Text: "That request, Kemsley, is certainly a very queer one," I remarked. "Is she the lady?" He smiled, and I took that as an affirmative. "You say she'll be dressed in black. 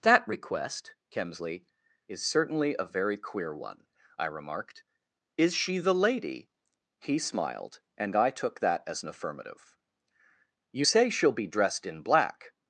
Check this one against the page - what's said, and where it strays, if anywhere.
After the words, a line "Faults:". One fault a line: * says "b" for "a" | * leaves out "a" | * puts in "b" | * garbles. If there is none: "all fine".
"That request, Kemsley, is certainly a very queer one," I remarked. "Is she the lady?" He smiled, and I took that as an affirmative. "You say she'll be dressed in black.
Faults:
all fine